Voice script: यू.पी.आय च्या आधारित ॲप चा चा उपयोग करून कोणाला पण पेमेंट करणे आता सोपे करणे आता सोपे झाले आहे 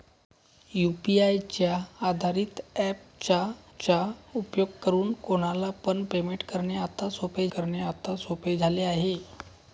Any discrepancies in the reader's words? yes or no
no